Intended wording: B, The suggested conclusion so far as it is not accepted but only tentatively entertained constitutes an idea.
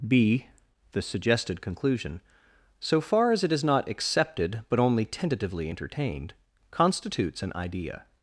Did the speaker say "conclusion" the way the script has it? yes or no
yes